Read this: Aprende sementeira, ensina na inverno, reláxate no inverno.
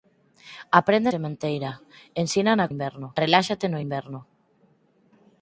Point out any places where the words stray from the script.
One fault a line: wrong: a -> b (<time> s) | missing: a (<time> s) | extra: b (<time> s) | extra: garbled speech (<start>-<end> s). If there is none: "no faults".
no faults